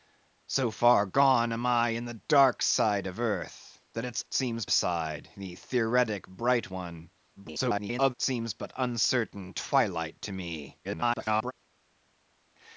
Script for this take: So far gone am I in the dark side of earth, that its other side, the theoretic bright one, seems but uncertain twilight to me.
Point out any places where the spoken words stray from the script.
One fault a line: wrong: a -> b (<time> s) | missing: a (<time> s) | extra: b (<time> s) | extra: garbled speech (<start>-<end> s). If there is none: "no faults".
wrong: other -> seems (4.3 s)
extra: garbled speech (7.4-8.1 s)
extra: garbled speech (10.8-11.5 s)